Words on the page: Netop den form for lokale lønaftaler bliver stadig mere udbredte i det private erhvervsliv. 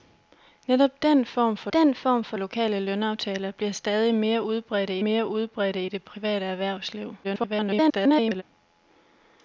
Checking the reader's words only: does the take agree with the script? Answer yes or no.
no